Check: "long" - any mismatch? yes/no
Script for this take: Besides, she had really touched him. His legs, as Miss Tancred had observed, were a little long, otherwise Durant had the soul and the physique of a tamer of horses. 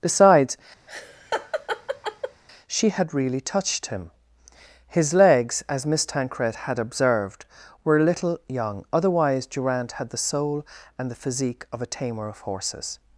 yes